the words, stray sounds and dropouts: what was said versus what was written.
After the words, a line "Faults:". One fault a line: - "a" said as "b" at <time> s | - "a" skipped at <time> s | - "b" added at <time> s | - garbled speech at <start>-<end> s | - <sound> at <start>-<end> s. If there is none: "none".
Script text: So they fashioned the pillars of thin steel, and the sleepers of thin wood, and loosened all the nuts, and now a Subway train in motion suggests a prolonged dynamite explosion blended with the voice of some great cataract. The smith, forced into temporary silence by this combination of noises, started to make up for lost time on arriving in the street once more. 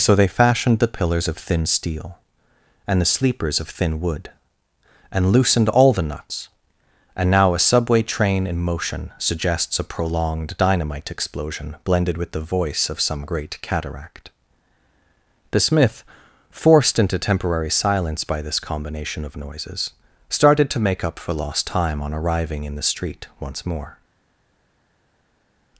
So they fashioned the pillars of thin steel, and the sleepers of thin wood, and loosened all the nuts, and now a Subway train in motion suggests a prolonged dynamite explosion blended with the voice of some great cataract. The smith, forced into temporary silence by this combination of noises, started to make up for lost time on arriving in the street once more.
Faults:
none